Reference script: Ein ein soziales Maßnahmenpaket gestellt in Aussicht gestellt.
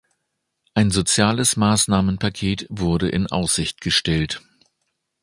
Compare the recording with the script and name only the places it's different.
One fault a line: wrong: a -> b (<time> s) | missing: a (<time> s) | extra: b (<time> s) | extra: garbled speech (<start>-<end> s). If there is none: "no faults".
missing: ein (0.9 s)
wrong: gestellt -> wurde (2.7 s)